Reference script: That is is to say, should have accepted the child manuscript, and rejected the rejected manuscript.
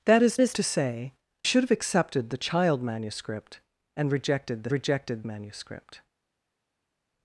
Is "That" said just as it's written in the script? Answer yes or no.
yes